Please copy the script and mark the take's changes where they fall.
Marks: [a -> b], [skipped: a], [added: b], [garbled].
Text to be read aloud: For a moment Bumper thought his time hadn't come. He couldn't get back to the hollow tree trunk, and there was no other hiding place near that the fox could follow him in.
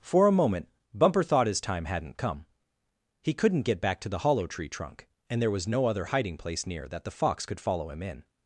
For a moment Bumper thought his time hadn't come. He couldn't get back to the hollow tree trunk, and there was no other hiding place near that the fox could follow him in.